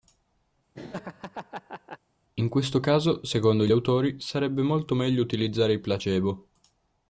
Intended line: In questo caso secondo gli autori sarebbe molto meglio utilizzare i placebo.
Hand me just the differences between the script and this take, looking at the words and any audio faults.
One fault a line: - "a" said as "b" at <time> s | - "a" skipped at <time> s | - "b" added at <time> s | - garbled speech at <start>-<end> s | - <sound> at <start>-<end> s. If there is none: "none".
- laugh at 0.7-2.0 s